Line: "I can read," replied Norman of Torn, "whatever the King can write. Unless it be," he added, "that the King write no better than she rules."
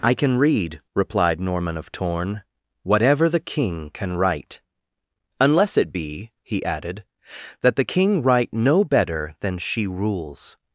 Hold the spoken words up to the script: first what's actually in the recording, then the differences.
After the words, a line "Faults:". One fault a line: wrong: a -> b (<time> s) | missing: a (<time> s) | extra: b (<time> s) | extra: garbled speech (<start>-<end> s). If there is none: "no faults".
"I can read," replied Norman of Torn, "whatever the King can write. Unless it be," he added, "that the King write no better than she rules."
Faults:
no faults